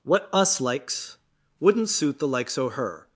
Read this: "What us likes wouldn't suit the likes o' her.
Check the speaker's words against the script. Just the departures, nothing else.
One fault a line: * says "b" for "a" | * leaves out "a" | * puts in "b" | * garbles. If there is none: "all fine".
all fine